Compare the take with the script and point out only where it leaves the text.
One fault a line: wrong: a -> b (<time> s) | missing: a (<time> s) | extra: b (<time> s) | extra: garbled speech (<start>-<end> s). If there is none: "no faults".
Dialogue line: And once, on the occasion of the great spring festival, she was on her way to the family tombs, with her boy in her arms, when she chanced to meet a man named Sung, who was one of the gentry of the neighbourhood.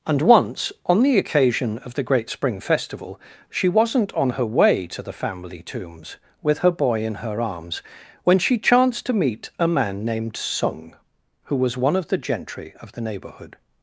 wrong: was -> wasn't (3.7 s)